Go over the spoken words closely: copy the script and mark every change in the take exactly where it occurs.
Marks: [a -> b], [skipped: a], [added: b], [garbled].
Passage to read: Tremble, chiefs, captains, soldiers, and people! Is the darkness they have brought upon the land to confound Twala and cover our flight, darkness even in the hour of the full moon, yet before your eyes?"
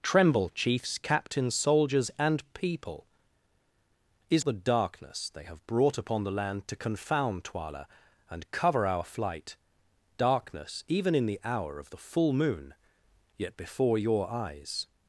Tremble, chiefs, captains, soldiers, and people! Is the darkness they have brought upon the land to confound Twala and cover our flight, darkness even in the hour of the full moon, yet before your eyes?"